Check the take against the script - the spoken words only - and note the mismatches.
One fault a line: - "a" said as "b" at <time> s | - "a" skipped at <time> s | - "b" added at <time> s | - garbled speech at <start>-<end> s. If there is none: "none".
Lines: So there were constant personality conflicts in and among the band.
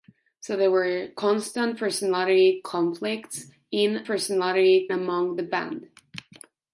- "and" said as "personality" at 4.0 s